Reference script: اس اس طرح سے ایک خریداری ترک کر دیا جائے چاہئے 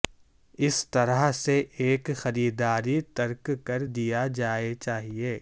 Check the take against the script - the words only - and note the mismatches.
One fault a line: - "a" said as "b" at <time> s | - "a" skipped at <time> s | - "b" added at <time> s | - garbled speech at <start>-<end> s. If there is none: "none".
- "اس" skipped at 0.8 s